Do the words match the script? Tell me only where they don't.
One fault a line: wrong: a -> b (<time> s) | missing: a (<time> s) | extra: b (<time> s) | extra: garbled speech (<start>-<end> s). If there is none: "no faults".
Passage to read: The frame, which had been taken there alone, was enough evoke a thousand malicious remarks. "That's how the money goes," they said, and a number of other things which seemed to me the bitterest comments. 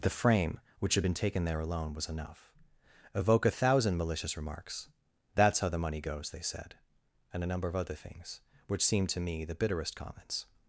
no faults